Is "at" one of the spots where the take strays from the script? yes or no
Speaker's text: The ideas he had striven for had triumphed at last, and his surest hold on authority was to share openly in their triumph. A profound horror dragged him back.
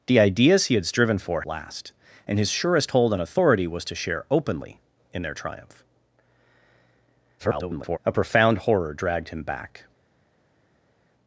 yes